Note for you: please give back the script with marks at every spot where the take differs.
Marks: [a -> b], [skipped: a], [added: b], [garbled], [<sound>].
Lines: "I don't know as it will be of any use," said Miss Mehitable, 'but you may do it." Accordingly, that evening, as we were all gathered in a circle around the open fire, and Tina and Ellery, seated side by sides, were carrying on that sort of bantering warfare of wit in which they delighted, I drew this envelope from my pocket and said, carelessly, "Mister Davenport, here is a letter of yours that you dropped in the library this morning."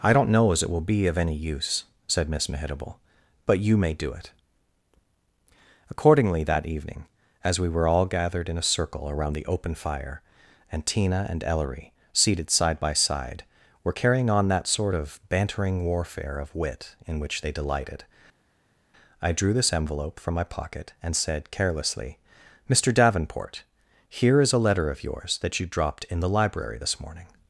"I don't know as it will be of any use," said Miss Mehitable, 'but you may do it." Accordingly, that evening, as we were all gathered in a circle around the open fire, and Tina and Ellery, seated side by [sides, -> side] were carrying on that sort of bantering warfare of wit in which they delighted, I drew this envelope from my pocket and said, carelessly, "Mister Davenport, here is a letter of yours that you dropped in the library this morning."